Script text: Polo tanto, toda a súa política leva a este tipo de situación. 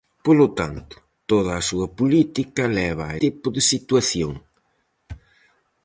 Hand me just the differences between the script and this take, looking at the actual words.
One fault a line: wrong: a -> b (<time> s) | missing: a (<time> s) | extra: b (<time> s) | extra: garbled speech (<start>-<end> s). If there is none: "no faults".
missing: este (3.2 s)